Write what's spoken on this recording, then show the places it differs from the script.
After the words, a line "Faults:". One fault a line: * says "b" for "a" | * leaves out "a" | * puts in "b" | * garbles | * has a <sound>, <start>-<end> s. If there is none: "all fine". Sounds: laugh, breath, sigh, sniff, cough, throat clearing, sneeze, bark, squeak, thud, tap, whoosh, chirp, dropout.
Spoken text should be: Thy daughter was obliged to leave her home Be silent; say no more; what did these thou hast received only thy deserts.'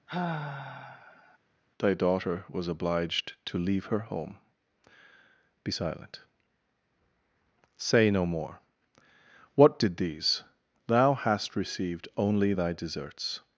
Thy daughter was obliged to leave her home Be silent; say no more; what did these thou hast received only thy deserts.'
Faults:
* has a sigh, 0.1-1.4 s